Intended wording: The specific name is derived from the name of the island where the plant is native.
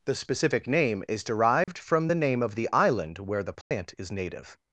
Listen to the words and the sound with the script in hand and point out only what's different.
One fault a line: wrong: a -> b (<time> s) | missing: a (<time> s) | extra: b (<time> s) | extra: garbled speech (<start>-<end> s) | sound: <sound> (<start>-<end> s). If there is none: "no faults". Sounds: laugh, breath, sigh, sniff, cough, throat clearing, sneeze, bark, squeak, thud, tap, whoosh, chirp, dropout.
sound: dropout (1.6-1.7 s)
sound: dropout (3.6-3.7 s)